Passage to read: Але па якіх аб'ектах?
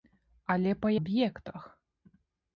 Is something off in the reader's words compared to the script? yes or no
yes